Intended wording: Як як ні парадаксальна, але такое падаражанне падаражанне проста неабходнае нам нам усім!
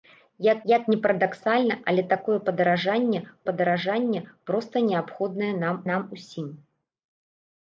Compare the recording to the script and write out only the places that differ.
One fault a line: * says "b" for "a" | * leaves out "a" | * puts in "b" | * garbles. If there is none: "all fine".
all fine